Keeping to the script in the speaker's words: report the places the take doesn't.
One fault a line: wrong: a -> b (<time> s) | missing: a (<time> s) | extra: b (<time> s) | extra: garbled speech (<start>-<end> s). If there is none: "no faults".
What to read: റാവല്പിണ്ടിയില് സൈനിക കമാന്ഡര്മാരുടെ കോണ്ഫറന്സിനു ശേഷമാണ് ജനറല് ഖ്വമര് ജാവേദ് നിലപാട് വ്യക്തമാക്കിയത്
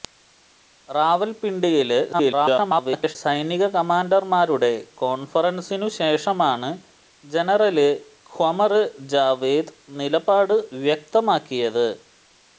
extra: garbled speech (2.1-3.2 s)